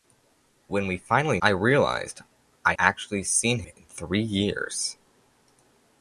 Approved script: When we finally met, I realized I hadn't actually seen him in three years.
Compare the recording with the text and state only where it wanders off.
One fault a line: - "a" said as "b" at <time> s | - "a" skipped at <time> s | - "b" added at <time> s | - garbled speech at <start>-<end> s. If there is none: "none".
- "met" skipped at 1.4 s
- "hadn't" skipped at 2.7 s
- "him" skipped at 3.6 s